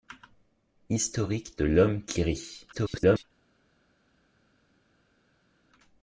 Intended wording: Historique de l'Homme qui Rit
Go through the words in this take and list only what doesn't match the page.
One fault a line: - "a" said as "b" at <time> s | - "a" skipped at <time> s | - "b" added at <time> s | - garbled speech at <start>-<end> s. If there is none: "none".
- garbled speech at 2.7-3.2 s